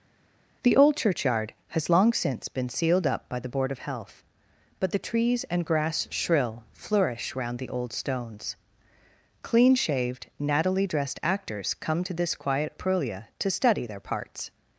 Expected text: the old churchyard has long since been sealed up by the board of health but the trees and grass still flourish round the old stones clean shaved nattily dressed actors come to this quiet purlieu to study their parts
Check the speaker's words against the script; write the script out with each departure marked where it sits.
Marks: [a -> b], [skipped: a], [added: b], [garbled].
the old churchyard has long since been sealed up by the board of health but the trees and grass [still -> shrill] flourish round the old stones clean shaved nattily dressed actors come to this quiet purlieu to study their parts